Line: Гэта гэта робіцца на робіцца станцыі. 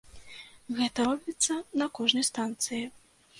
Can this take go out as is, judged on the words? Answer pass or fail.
fail